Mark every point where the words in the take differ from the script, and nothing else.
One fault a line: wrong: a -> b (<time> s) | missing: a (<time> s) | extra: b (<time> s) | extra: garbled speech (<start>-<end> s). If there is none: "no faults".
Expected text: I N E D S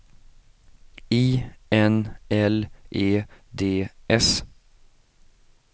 extra: L (2.3 s)